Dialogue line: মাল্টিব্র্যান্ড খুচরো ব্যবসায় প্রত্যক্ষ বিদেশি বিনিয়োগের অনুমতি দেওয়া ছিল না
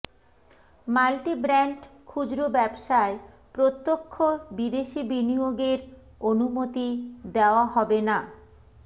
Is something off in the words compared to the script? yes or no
yes